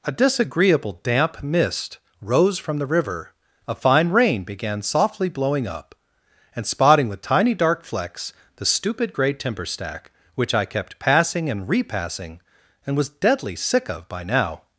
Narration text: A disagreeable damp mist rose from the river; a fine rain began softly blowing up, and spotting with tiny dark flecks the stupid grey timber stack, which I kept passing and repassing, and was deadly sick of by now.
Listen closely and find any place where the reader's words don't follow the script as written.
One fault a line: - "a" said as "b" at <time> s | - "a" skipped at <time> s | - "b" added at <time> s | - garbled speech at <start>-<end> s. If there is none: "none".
none